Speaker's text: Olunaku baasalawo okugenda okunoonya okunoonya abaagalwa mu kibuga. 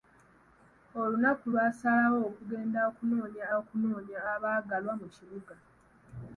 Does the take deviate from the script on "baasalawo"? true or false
false